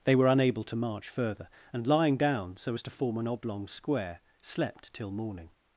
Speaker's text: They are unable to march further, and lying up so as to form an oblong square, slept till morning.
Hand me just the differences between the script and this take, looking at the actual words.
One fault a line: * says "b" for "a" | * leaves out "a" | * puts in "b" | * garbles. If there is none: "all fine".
* says "were" for "are"
* says "down" for "up"